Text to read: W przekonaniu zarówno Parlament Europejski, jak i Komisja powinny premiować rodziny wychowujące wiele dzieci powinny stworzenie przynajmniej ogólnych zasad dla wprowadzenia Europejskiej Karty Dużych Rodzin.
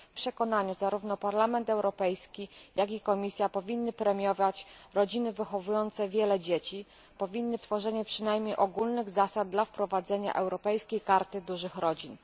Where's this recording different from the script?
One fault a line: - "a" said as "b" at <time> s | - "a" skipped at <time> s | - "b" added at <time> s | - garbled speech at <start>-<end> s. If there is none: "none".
none